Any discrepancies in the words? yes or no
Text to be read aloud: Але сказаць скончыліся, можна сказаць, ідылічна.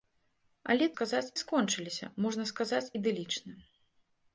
no